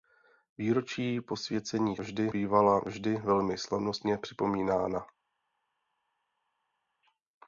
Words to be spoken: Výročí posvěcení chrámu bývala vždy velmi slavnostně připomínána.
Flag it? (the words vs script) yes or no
yes